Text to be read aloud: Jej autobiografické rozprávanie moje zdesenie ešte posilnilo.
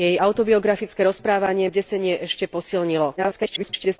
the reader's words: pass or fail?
fail